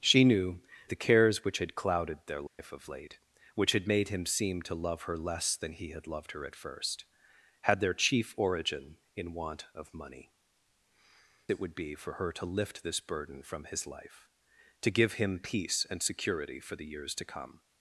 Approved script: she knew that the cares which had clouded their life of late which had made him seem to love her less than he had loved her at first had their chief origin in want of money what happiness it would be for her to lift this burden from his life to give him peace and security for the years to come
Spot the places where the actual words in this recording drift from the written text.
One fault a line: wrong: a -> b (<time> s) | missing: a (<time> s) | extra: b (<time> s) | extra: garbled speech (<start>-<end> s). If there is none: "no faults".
missing: that (0.6 s)
missing: what happiness (10.3 s)